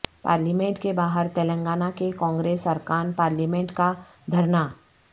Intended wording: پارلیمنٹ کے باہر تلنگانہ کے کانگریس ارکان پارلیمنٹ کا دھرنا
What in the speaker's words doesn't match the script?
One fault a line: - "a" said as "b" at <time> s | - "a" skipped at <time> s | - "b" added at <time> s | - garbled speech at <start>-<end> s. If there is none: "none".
none